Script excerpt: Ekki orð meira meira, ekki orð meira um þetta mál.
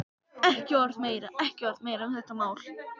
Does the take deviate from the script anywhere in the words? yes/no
yes